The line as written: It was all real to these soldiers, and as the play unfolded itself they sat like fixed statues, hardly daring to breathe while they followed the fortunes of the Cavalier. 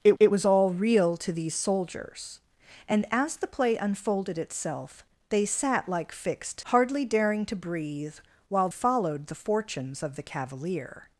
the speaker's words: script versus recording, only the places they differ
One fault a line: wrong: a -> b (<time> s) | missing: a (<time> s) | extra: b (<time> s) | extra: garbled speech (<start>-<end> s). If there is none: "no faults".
extra: it (0.2 s)
missing: statues (6.6 s)
missing: they (8.7 s)